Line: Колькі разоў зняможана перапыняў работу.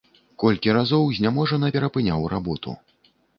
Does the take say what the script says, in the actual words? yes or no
yes